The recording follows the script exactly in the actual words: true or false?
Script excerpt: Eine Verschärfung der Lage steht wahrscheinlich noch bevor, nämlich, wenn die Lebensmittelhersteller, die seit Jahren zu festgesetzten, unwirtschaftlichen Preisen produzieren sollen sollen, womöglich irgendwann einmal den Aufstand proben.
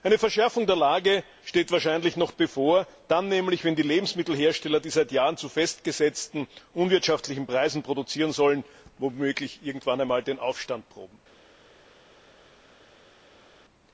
false